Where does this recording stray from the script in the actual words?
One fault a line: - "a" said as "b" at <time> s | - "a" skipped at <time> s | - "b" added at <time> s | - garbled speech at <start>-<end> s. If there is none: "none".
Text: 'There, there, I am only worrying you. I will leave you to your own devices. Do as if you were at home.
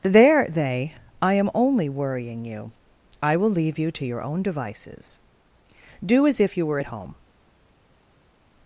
- "there" said as "they" at 0.5 s